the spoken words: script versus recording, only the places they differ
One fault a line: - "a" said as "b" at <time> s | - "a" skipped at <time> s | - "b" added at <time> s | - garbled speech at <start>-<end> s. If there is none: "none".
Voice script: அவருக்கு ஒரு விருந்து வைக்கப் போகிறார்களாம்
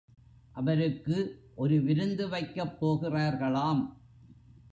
none